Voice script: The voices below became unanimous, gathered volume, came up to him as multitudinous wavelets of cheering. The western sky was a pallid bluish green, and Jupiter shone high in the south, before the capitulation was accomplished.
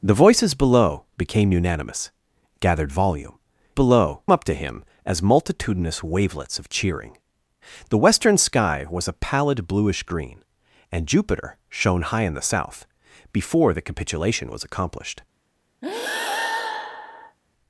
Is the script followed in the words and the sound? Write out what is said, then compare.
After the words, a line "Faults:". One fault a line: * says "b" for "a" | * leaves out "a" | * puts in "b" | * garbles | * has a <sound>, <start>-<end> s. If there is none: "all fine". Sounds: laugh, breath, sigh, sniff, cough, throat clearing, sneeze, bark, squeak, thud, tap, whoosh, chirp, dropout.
The voices below became unanimous, gathered volume, below up to him as multitudinous wavelets of cheering. The western sky was a pallid bluish green, and Jupiter shone high in the south, before the capitulation was accomplished.
Faults:
* says "below" for "came"
* has a breath, 15.8-17.4 s